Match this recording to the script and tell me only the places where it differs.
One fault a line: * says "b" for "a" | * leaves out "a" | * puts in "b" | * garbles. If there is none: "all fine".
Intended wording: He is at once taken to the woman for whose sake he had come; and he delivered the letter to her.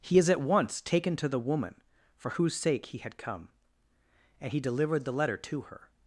all fine